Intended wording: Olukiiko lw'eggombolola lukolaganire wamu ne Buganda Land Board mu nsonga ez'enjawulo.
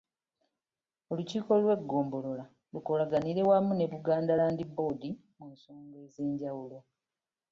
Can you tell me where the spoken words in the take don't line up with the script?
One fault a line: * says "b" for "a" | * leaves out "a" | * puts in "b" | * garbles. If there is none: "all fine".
all fine